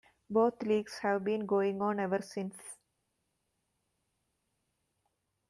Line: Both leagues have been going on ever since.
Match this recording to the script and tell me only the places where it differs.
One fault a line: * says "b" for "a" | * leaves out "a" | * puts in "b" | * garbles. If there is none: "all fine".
all fine